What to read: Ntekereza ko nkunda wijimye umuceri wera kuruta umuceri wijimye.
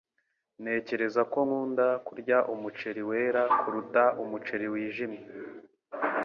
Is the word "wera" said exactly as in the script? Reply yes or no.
yes